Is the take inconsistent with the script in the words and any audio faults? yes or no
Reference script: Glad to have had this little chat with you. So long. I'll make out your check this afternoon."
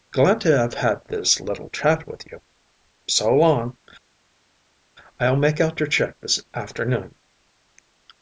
no